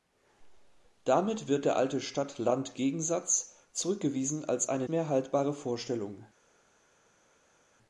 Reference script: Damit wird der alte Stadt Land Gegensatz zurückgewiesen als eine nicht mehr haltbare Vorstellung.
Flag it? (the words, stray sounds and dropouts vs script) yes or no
yes